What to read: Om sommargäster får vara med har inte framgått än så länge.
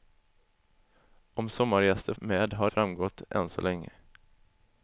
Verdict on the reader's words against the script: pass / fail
fail